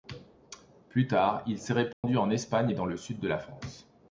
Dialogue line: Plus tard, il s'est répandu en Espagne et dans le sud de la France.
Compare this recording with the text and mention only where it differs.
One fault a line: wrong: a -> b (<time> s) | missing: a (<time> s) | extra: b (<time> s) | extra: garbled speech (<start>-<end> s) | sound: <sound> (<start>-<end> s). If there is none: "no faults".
sound: dropout (1.9-2.0 s)